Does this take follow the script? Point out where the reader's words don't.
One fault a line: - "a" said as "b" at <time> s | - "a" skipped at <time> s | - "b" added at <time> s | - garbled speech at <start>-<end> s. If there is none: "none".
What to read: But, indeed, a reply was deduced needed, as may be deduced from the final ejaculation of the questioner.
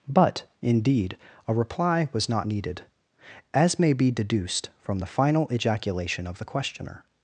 - "deduced" said as "not" at 2.3 s